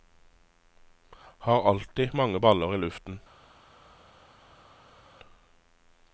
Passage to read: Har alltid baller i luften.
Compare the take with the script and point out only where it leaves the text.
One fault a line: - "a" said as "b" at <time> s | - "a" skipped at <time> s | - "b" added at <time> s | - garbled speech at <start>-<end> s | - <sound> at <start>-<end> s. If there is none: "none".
- "mange" added at 2.1 s